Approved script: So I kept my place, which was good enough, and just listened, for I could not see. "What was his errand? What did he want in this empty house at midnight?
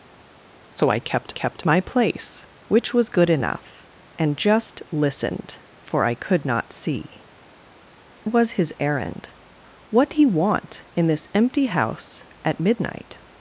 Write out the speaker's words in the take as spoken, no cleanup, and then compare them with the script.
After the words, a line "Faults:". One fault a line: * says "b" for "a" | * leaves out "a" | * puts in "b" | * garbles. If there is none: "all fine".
So I kept kept my place, which was good enough, and just listened, for I could not see. "Was his errand? What he want in this empty house at midnight?
Faults:
* puts in "kept"
* leaves out "What"
* leaves out "did"